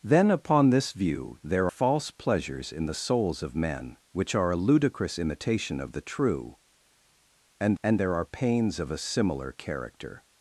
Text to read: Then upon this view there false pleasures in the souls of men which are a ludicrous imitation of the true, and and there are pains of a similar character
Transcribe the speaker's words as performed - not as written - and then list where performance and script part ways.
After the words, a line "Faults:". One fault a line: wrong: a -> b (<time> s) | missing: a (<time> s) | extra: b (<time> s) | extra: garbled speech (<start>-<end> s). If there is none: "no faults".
Then upon this view there false pleasures in the souls of men which are a ludicrous imitation of the true, and and there are pains of a similar character
Faults:
no faults